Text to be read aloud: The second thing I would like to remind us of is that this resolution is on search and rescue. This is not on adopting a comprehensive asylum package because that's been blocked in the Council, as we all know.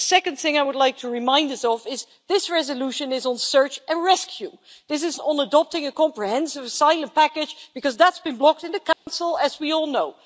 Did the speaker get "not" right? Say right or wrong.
wrong